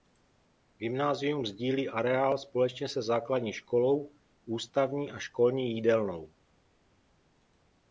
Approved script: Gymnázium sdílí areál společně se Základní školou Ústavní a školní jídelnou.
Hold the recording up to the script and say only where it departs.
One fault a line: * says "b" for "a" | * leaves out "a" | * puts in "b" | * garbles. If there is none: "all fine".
all fine